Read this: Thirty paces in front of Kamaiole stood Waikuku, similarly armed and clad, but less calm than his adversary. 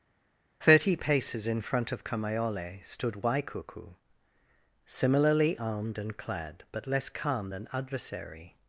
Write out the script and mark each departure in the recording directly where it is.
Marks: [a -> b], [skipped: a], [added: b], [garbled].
Thirty paces in front of Kamaiole stood Waikuku, similarly armed and clad, but less calm than [skipped: his] adversary.